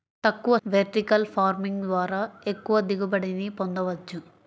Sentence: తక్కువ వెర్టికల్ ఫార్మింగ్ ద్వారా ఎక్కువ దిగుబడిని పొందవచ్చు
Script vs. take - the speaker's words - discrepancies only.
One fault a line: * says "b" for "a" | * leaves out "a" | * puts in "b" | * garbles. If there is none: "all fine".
all fine